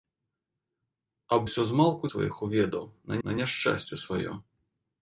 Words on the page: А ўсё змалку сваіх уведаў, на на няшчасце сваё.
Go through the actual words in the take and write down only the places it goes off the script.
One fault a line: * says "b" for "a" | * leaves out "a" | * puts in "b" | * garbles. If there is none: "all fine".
all fine